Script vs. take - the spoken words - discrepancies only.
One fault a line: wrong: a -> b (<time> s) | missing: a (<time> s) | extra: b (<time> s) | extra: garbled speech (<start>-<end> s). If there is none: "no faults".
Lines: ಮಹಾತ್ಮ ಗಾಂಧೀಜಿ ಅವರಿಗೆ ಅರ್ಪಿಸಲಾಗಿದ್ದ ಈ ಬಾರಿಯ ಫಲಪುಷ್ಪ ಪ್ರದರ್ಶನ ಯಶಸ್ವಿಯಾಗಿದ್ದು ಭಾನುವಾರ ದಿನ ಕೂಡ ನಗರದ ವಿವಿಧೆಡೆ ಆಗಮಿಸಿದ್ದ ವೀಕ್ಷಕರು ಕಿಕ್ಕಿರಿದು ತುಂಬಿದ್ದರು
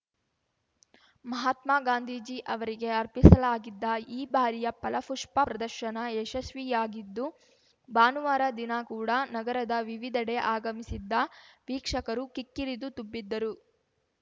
no faults